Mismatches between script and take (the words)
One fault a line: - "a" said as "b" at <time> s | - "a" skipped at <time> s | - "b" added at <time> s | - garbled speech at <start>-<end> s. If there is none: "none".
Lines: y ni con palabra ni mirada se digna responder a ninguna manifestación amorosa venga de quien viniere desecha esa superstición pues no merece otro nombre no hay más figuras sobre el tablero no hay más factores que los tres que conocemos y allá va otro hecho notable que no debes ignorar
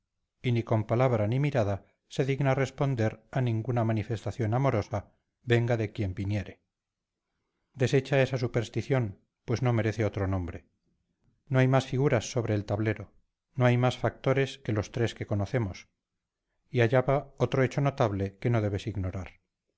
none